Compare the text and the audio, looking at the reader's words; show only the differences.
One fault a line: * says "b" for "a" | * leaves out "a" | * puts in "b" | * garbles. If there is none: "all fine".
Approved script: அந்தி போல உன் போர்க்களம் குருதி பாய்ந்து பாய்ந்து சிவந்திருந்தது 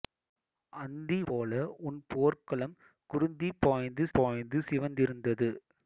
all fine